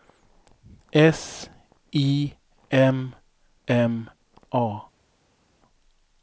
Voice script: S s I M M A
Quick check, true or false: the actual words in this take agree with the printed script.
false